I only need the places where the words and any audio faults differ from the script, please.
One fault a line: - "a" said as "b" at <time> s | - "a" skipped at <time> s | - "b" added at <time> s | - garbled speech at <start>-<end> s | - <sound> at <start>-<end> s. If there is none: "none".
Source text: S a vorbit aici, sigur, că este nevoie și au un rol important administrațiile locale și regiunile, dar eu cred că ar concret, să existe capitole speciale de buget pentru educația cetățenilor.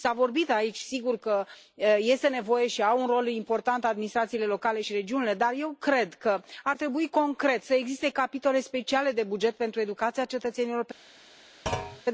- "trebui" added at 6.8 s
- thud at 11.7-12.0 s